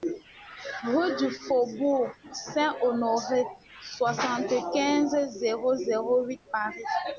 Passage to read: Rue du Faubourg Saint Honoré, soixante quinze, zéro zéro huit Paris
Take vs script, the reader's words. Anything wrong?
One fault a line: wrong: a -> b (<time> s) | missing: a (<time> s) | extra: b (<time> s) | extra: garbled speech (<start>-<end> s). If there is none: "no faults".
no faults